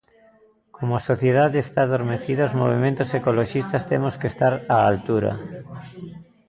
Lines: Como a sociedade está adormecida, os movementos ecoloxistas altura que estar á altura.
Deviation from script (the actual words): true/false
true